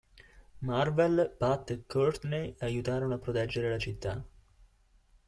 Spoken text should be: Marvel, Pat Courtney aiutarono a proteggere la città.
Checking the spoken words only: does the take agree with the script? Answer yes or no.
no